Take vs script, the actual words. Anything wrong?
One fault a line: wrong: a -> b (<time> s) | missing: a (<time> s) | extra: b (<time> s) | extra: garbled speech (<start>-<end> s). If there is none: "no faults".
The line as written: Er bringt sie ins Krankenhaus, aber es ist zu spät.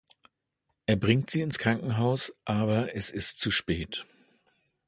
no faults